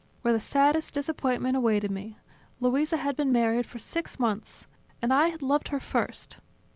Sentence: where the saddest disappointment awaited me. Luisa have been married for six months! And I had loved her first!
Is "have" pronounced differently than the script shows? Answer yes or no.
yes